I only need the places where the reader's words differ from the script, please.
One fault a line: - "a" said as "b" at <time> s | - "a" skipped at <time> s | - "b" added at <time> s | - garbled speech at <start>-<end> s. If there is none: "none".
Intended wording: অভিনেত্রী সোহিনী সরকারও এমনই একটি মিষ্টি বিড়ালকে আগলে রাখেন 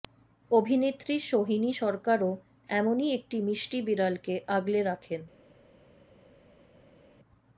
none